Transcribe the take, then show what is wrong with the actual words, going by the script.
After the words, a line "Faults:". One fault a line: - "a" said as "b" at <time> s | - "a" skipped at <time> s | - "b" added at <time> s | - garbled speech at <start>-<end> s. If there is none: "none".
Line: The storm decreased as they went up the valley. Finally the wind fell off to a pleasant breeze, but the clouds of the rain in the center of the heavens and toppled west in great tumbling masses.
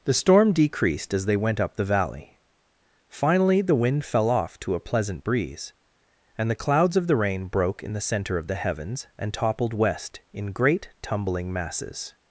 The storm decreased as they went up the valley. Finally the wind fell off to a pleasant breeze, and the clouds of the rain broke in the center of the heavens and toppled west in great tumbling masses.
Faults:
- "but" said as "and" at 6.4 s
- "broke" added at 7.5 s